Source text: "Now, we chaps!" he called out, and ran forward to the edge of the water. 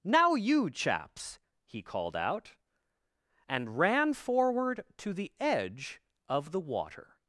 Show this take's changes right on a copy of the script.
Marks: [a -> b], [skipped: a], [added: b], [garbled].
"Now, [we -> you] chaps!" he called out, and ran forward to the edge of the water.